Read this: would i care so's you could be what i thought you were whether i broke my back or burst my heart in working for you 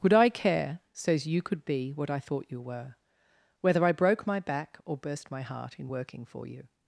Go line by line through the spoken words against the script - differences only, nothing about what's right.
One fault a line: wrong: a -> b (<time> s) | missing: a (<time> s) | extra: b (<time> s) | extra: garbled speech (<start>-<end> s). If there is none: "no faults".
no faults